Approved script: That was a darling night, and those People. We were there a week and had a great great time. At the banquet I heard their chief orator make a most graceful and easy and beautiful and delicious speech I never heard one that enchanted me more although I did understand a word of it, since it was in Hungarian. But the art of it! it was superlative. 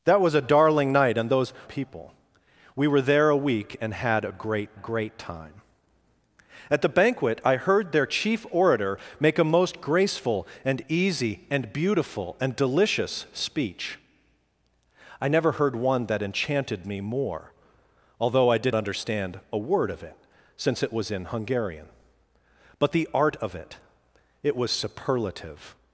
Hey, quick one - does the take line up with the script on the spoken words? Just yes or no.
yes